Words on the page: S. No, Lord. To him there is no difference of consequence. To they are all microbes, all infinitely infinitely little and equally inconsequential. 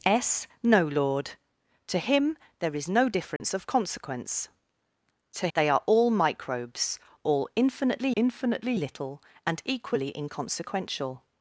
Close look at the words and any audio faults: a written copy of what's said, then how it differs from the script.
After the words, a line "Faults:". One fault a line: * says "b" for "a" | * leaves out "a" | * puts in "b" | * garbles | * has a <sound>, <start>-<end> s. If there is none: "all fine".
S. No, Lord. To him there is no difference of consequence. To they are all microbes, all infinitely infinitely little and equally inconsequential.
Faults:
* has a dropout, 3.4-3.4 s